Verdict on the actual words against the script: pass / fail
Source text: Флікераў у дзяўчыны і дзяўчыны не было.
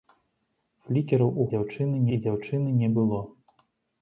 pass